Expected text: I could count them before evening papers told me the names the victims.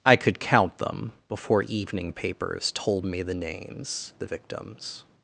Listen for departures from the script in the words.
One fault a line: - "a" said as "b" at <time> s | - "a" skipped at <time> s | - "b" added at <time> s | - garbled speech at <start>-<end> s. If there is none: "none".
none